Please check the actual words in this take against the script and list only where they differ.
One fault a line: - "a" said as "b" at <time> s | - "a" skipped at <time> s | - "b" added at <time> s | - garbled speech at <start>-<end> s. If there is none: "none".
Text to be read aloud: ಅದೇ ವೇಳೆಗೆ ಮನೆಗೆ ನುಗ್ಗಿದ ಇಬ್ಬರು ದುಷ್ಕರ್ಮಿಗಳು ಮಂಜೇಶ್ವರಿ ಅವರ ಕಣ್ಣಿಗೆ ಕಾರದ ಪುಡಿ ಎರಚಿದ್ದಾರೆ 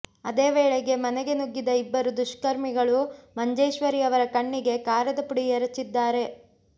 none